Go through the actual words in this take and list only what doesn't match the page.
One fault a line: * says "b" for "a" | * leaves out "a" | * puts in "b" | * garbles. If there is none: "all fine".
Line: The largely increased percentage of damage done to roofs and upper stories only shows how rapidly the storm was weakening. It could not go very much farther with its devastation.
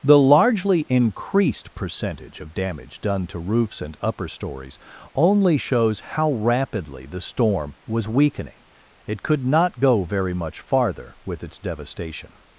all fine